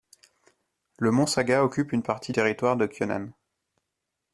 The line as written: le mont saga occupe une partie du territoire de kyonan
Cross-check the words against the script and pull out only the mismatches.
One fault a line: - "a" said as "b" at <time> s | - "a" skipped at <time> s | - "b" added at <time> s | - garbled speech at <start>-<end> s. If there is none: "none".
- "du" skipped at 2.3 s